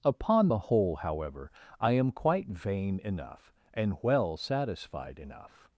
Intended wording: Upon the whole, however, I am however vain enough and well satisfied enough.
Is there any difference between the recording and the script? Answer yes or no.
yes